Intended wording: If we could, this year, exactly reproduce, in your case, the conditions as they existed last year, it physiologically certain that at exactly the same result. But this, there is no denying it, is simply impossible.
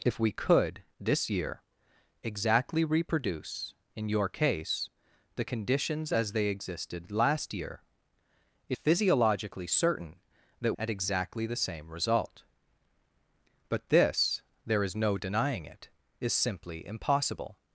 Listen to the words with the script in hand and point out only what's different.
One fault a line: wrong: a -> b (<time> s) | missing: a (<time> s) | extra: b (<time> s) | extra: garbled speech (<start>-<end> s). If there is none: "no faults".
no faults